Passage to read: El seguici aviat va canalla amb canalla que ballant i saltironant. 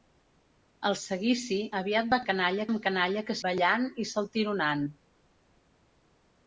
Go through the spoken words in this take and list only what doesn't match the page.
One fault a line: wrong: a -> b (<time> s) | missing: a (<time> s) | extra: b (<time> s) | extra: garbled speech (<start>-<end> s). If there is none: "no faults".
no faults